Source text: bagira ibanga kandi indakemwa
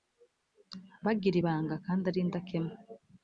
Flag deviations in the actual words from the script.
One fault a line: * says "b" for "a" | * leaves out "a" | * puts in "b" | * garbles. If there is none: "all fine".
* puts in "ari"